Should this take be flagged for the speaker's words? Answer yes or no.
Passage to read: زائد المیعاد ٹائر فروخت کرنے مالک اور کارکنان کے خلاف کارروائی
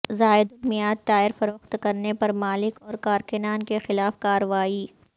yes